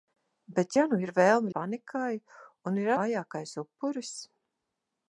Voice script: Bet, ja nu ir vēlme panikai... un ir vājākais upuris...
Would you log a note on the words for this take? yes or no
no